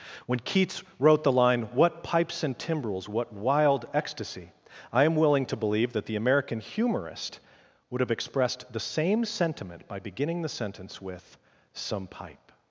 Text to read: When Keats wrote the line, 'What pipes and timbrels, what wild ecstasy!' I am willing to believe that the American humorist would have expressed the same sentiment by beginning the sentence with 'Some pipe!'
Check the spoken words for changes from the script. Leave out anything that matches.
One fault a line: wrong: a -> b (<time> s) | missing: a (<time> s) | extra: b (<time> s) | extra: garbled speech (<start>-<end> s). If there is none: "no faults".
no faults